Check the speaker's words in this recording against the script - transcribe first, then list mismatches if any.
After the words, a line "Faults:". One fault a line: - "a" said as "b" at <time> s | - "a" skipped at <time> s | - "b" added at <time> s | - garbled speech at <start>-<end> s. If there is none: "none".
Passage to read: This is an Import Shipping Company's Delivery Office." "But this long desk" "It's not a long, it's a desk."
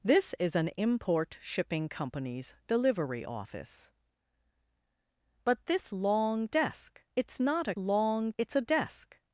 This is an Import Shipping Company's Delivery Office." "But this long desk" "It's not a long, it's a desk."
Faults:
none